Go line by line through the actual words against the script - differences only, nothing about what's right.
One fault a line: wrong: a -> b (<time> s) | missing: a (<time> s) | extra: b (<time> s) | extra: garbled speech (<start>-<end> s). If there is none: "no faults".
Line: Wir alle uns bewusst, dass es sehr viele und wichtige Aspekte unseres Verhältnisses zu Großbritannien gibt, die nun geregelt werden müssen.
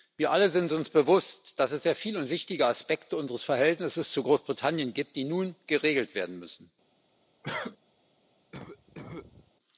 extra: sind (0.5 s)